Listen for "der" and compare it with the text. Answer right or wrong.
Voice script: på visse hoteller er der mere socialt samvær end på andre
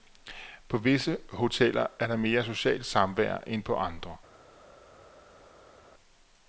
right